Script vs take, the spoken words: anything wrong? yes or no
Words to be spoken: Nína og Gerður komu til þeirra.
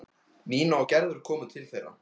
no